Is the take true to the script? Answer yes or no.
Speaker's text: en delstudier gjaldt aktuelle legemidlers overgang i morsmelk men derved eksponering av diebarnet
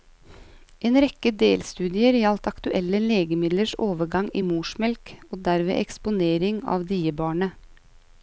no